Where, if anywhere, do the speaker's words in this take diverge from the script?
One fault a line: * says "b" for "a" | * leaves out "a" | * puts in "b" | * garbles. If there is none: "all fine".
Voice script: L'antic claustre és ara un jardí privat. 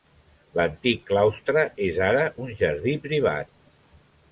all fine